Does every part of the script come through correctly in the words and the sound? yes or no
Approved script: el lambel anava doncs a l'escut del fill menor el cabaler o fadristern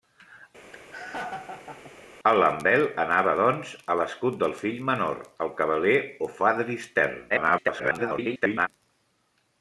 no